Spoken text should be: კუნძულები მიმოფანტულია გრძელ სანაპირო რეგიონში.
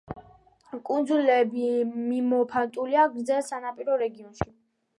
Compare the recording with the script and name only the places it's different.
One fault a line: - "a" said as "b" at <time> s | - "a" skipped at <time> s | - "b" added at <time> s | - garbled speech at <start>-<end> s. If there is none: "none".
none